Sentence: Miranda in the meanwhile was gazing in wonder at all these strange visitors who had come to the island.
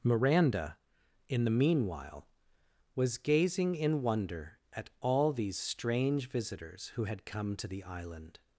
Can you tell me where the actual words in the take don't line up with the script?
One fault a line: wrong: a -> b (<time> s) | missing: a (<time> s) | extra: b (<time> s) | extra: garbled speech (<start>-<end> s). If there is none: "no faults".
no faults